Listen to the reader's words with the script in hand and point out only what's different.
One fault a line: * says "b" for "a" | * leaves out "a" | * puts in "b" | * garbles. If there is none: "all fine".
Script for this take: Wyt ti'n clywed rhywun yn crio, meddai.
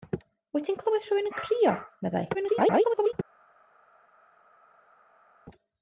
* garbles